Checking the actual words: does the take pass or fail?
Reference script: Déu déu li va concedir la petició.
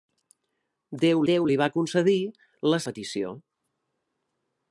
pass